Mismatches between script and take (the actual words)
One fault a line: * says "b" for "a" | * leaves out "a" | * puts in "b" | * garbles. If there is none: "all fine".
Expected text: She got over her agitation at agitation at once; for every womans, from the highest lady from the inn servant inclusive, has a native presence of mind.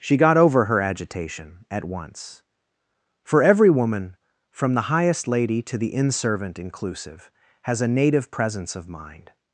* leaves out "agitation at"
* says "woman" for "womans"
* says "to" for "from"